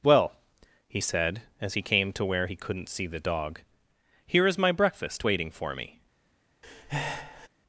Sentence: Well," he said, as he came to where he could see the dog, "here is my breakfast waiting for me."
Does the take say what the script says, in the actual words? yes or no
no